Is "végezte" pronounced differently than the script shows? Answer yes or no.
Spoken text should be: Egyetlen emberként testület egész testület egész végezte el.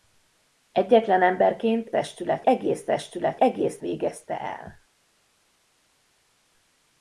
no